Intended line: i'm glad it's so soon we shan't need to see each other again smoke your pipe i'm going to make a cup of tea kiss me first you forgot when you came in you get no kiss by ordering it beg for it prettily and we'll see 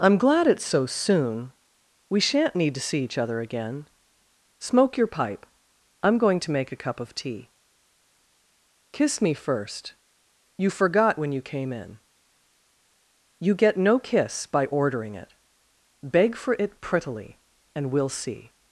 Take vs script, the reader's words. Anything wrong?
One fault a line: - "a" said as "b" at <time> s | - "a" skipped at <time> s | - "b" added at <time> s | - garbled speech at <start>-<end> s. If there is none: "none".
none